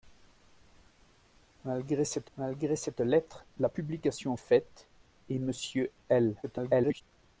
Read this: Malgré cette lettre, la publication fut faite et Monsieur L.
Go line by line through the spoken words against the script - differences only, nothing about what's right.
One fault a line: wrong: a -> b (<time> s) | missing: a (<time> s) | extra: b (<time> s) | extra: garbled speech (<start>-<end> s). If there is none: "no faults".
extra: malgré cette (2.4 s)
missing: fut (4.4 s)
extra: garbled speech (6.4-7.0 s)